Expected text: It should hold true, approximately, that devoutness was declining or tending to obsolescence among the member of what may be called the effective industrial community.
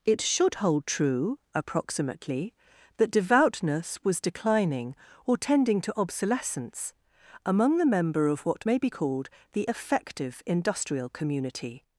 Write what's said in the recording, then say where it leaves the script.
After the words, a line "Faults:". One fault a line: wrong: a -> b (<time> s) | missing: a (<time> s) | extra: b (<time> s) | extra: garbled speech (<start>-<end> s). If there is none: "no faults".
It should hold true, approximately, that devoutness was declining or tending to obsolescence among the member of what may be called the effective industrial community.
Faults:
no faults